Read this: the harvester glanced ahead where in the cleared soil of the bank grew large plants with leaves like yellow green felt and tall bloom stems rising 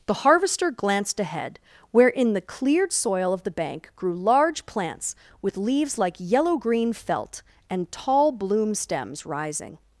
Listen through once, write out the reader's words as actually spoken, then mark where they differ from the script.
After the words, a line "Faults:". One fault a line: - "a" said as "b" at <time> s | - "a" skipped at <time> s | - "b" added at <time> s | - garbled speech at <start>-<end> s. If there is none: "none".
the harvester glanced ahead where in the cleared soil of the bank grew large plants with leaves like yellow green felt and tall bloom stems rising
Faults:
none